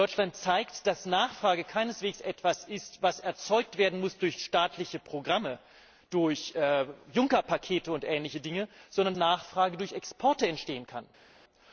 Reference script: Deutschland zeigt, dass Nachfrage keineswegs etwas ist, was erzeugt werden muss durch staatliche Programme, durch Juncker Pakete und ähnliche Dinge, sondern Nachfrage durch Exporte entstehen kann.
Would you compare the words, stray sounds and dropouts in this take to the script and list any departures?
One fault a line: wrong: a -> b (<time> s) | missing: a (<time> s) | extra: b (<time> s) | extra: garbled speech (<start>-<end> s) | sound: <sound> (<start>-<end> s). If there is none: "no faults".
no faults